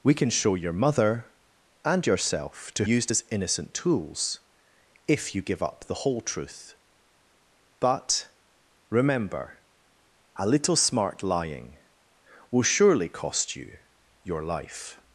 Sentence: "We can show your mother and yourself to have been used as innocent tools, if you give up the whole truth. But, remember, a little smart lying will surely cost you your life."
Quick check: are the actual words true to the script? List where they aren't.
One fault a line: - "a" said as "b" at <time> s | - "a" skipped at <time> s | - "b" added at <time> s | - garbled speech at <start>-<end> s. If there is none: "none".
- "have been" skipped at 2.9 s